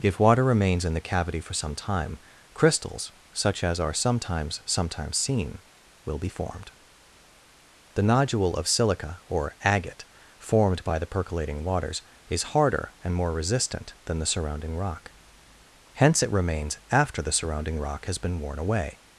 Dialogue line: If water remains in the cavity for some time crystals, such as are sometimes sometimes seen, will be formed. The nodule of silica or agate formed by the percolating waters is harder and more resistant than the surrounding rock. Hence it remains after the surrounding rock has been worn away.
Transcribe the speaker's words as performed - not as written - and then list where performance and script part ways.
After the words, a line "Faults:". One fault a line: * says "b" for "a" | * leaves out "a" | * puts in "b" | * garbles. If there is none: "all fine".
If water remains in the cavity for some time crystals, such as are sometimes sometimes seen, will be formed. The nodule of silica or agate formed by the percolating waters is harder and more resistant than the surrounding rock. Hence it remains after the surrounding rock has been worn away.
Faults:
all fine